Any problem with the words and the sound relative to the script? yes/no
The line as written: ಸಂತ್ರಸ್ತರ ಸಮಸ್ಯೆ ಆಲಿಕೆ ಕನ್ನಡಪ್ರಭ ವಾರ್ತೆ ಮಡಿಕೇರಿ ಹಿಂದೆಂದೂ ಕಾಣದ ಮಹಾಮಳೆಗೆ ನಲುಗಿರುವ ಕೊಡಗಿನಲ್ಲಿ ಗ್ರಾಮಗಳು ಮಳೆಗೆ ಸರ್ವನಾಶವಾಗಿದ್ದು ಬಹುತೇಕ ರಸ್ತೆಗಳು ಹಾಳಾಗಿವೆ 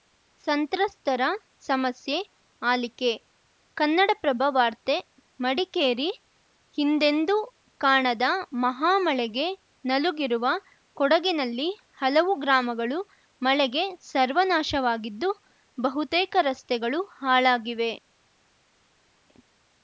yes